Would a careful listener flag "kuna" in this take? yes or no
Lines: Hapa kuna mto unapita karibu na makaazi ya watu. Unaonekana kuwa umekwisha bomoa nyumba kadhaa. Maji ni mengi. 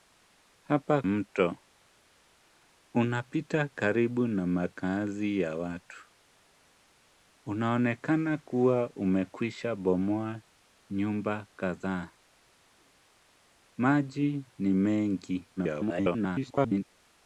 yes